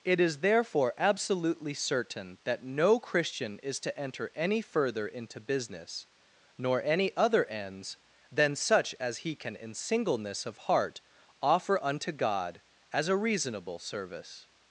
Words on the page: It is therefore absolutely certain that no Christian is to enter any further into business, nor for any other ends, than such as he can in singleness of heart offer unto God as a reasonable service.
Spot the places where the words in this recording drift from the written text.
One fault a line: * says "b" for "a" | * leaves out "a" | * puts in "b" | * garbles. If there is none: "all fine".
* leaves out "for"